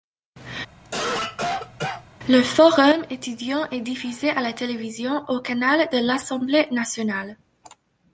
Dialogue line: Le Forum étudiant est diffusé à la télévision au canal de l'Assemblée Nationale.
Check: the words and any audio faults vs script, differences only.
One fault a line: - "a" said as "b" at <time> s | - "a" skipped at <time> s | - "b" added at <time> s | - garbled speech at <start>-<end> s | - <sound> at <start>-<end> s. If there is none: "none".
- cough at 0.8-2.1 s